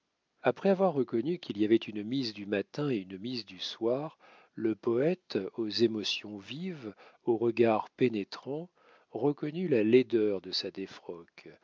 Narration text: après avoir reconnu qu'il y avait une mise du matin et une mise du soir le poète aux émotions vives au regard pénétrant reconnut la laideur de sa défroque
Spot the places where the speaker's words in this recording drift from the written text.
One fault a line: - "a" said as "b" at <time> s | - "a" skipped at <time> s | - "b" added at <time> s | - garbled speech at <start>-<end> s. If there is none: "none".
none